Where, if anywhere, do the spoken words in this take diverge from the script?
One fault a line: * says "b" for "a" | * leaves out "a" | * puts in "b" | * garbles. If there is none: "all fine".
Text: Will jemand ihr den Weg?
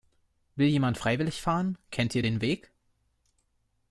* puts in "freiwillig fahren Kennt"